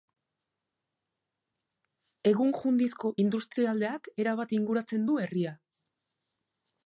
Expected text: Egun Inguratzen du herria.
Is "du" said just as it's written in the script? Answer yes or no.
yes